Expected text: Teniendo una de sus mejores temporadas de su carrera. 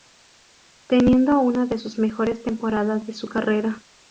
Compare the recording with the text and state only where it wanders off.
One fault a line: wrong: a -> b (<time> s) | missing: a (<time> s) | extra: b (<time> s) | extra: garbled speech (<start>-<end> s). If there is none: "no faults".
no faults